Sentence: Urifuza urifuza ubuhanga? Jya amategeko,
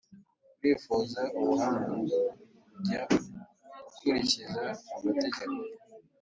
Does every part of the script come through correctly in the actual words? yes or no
no